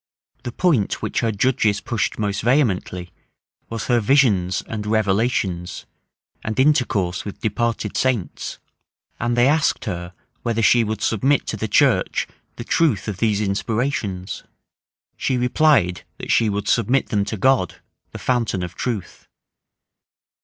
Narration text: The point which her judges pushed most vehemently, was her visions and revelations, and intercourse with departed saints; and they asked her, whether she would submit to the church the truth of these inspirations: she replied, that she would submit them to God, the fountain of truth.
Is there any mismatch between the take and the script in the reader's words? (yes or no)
no